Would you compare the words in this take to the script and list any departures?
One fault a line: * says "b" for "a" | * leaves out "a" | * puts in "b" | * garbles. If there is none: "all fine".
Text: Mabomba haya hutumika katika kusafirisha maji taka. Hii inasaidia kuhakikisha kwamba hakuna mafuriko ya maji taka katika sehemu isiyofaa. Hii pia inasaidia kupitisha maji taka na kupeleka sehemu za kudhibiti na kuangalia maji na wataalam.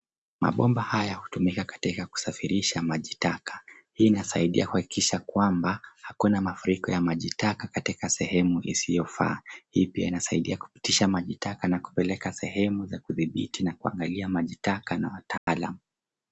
* puts in "taka"